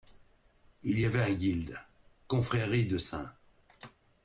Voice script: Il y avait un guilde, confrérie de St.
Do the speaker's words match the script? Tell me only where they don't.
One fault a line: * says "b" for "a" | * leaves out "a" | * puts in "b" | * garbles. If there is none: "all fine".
all fine